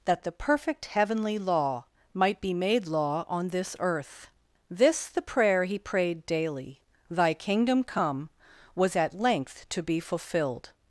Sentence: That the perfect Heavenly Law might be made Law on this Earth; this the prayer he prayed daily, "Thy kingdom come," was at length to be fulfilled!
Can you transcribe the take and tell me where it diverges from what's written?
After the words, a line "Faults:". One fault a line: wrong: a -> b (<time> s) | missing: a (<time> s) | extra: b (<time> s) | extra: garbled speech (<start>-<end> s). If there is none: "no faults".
That the perfect Heavenly Law might be made Law on this Earth; this the prayer he prayed daily, "Thy kingdom come," was at length to be fulfilled!
Faults:
no faults